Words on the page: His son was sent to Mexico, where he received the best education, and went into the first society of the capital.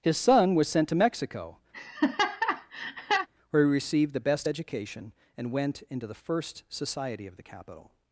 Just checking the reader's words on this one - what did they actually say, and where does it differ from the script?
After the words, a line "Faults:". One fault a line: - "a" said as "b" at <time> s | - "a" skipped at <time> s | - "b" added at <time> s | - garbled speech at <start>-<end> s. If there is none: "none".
His son was sent to Mexico, where he received the best education, and went into the first society of the capital.
Faults:
none